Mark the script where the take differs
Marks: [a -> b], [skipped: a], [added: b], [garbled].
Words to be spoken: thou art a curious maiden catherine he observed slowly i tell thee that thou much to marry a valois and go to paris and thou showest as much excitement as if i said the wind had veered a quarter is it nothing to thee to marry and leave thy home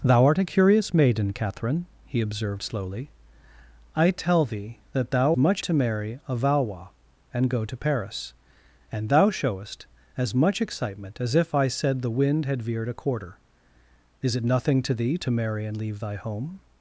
thou art a curious maiden catherine he observed slowly i tell thee that thou much to marry a valois and go to paris and thou showest as much excitement as if i said the wind had veered a quarter is it nothing to thee to marry and leave thy home